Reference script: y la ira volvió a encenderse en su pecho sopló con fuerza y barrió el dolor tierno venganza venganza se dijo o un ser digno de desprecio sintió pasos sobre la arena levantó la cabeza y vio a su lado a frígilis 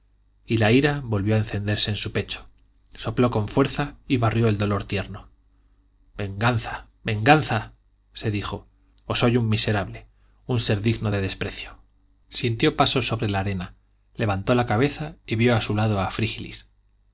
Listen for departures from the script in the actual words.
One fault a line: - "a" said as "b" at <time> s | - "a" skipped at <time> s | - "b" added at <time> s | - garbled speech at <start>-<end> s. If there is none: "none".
- "soy un miserable" added at 9.2 s